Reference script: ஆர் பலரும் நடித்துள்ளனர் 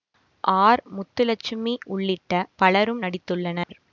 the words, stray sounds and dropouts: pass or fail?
fail